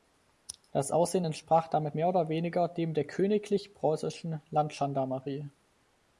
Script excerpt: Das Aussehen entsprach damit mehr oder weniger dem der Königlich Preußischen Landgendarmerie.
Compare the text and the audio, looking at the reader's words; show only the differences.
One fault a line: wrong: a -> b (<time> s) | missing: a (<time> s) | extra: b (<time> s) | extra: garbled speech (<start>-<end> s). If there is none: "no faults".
no faults